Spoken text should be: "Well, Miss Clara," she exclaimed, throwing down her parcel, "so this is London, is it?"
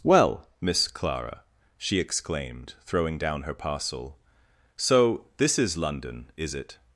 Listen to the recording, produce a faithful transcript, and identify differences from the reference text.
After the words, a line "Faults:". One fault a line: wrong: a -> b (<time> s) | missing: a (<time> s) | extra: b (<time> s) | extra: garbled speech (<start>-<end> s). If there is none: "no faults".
"Well, Miss Clara," she exclaimed, throwing down her parcel, "so this is London, is it?"
Faults:
no faults